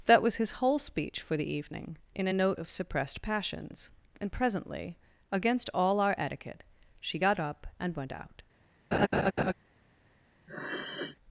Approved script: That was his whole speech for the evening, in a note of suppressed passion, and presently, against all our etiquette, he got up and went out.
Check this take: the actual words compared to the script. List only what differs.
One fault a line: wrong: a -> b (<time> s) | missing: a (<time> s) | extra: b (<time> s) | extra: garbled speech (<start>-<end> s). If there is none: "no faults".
wrong: passion -> passions (3.2 s)
wrong: he -> she (7.0 s)